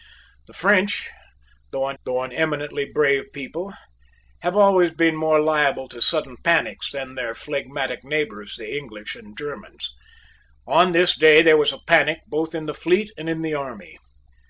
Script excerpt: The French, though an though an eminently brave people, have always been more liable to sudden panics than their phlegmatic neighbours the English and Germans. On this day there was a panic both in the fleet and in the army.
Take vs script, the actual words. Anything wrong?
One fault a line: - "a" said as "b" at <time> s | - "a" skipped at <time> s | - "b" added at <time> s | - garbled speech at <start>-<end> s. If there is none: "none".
none